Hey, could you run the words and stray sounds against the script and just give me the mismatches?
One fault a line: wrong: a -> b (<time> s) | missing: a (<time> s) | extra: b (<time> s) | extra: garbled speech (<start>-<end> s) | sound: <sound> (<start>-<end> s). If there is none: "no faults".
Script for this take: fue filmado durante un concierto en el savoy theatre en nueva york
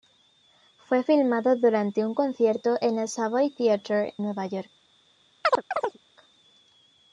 missing: en (4.1 s)
sound: chirp (5.4-6.0 s)